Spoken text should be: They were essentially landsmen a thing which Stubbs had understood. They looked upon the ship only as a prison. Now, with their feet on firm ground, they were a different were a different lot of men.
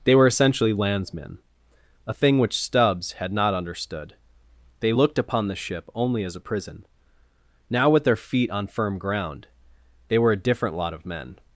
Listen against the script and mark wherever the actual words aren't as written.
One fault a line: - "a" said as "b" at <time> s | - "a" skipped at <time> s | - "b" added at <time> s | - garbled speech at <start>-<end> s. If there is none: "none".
- "not" added at 3.3 s
- "were a different" skipped at 10.8 s